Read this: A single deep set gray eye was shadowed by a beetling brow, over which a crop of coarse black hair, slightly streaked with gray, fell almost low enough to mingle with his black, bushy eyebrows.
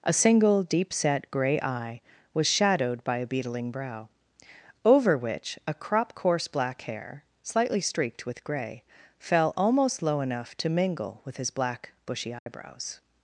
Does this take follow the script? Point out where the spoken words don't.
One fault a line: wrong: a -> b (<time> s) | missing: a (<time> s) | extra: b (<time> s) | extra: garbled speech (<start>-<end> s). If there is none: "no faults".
missing: of (6.2 s)